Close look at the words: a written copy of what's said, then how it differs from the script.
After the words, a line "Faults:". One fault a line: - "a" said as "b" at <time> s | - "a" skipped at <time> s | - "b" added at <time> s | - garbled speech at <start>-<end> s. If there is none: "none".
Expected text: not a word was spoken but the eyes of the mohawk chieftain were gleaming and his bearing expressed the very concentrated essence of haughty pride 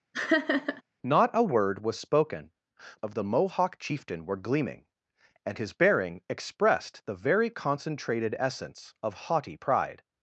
not a word was spoken of the mohawk chieftain were gleaming and his bearing expressed the very concentrated essence of haughty pride
Faults:
- "but the eyes" skipped at 2.5 s